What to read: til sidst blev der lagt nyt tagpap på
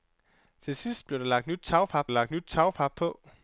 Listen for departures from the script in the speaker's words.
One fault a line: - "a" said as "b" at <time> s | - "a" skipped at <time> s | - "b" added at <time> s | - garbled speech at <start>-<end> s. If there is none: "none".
- "lagt nyt tagpap" added at 2.1 s